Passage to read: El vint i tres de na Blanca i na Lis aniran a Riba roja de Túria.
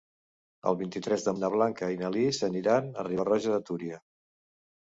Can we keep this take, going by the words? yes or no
yes